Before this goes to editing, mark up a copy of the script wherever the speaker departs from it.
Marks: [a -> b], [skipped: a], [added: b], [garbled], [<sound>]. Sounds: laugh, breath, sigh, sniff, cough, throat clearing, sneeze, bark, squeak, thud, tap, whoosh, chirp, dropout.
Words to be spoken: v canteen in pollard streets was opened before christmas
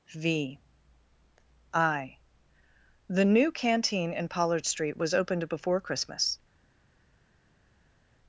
v [added: i the new] canteen in pollard [streets -> street] was opened before christmas